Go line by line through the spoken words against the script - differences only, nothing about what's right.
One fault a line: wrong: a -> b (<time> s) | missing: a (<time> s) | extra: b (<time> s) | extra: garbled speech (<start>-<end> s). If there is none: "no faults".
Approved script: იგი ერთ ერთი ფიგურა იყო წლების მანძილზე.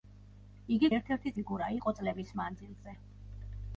no faults